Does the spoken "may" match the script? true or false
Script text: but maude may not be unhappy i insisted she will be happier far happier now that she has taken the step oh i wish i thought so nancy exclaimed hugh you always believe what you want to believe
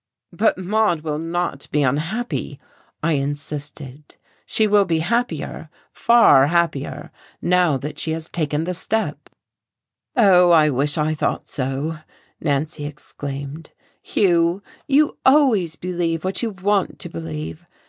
false